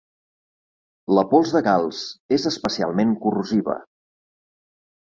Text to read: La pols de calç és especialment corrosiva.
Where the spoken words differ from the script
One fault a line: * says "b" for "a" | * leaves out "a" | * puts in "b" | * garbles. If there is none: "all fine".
all fine